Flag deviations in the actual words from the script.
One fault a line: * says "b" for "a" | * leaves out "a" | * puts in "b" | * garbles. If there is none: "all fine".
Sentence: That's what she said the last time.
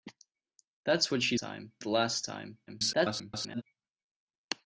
* says "time" for "said"
* garbles